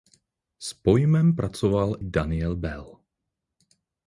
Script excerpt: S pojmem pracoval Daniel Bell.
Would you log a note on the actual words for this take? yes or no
no